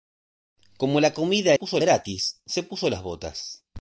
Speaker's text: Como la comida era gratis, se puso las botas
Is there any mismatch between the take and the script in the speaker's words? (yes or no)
yes